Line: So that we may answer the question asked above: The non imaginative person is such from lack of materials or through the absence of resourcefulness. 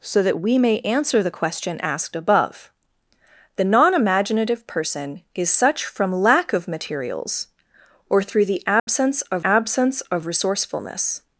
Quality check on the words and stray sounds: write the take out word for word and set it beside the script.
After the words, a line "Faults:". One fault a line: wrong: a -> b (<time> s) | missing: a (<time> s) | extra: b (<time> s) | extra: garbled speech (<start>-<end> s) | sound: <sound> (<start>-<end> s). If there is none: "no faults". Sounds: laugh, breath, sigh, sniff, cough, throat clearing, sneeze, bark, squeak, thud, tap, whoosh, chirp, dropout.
So that we may answer the question asked above: The non imaginative person is such from lack of materials or through the absence of absence of resourcefulness.
Faults:
sound: dropout (8.8-8.9 s)
extra: absence of (9.4 s)